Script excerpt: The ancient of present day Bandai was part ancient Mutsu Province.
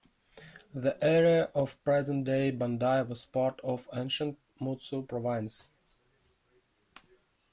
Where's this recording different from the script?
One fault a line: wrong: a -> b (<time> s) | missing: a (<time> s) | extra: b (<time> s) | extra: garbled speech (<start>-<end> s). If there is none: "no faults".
wrong: ancient -> area (1.0 s)
extra: of (3.6 s)